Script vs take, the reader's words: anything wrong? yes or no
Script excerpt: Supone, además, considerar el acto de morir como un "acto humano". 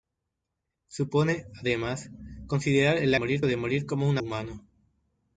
yes